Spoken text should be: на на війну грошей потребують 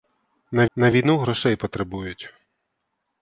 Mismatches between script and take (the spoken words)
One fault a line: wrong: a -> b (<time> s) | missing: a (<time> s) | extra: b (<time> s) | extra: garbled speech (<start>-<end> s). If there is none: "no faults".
no faults